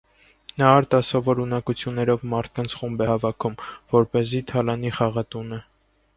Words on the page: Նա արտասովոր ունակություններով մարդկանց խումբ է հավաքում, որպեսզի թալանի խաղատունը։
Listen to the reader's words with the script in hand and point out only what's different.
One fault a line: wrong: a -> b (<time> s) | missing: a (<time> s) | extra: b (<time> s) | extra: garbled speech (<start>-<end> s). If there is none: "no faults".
no faults